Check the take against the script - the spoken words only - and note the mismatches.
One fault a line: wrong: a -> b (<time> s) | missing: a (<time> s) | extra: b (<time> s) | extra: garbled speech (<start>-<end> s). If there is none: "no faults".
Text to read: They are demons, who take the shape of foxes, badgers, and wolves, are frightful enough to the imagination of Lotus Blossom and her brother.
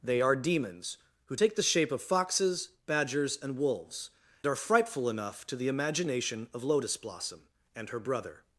no faults